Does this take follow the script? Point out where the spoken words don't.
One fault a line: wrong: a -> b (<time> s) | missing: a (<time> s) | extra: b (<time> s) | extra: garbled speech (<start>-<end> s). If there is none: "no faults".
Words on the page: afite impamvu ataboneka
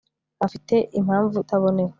no faults